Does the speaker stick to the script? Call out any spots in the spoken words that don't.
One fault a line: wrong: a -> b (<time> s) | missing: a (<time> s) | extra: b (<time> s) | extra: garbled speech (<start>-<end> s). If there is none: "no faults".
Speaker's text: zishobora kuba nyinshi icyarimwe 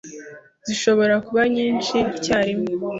no faults